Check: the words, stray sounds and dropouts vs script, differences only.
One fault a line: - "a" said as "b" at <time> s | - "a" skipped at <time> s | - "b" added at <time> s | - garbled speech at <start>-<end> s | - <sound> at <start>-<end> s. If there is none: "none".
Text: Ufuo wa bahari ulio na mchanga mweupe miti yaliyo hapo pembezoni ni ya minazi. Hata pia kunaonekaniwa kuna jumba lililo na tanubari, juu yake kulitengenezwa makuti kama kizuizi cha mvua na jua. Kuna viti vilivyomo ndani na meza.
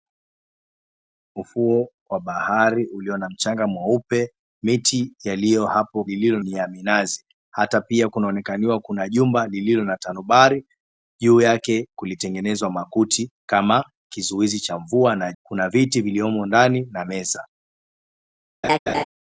- "pembezoni" said as "lililo" at 6.0 s
- "jua" skipped at 15.3 s
- laugh at 18.6-19.0 s